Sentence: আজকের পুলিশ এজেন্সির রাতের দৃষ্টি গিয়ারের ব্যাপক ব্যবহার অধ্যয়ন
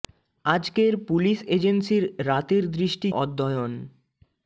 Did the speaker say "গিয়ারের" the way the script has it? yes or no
no